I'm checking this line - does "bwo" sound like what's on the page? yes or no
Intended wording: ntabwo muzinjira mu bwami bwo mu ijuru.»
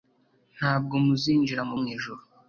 no